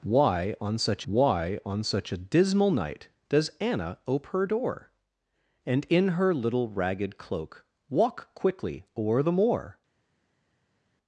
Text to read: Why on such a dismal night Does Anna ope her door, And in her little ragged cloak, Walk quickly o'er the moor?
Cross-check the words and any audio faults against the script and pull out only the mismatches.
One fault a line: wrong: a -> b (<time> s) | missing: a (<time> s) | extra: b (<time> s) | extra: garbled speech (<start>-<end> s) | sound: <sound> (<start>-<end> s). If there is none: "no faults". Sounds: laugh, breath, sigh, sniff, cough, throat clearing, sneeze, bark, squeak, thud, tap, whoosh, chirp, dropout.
extra: why on such (1.1 s)